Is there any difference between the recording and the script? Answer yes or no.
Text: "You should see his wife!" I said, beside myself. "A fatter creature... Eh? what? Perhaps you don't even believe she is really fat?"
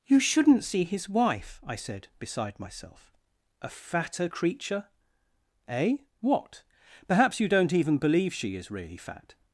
yes